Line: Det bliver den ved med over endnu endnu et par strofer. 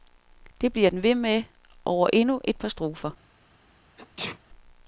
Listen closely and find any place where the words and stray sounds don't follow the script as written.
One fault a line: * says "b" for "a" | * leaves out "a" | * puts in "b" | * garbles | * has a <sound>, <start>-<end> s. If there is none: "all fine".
* leaves out "endnu"
* has a sneeze, 4.0-4.4 s